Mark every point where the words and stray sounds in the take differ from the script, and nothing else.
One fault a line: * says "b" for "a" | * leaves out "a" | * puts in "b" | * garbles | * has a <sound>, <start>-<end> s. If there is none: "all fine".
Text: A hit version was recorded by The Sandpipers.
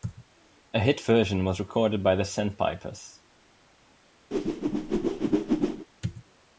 * has a whoosh, 4.3-5.9 s